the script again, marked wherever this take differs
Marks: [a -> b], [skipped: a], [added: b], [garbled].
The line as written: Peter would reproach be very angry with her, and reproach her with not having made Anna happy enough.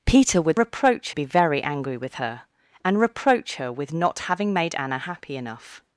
Peter would reproach be very angry with her, and reproach her with not having made Anna happy enough.